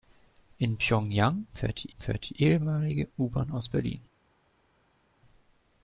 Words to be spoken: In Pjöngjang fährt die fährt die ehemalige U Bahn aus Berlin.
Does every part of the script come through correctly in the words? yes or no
yes